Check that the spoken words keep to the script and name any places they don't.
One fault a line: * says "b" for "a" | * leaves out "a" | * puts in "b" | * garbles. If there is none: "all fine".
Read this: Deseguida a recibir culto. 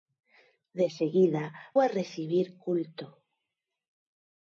all fine